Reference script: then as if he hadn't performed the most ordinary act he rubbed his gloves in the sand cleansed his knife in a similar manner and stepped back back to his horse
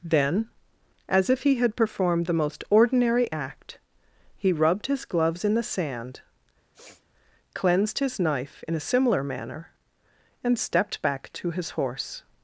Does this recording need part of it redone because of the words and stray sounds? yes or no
yes